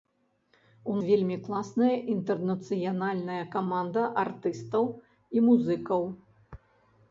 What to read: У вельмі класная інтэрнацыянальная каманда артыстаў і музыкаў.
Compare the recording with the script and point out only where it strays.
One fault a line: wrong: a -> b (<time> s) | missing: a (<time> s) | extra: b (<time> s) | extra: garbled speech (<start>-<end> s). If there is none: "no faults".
no faults